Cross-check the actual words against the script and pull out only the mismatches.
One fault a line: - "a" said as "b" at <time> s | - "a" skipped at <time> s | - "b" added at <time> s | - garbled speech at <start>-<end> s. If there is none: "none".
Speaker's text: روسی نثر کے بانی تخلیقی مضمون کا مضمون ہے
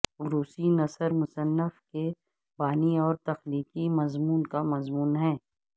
- "مصنف" added at 1.1 s
- "اور" added at 3.0 s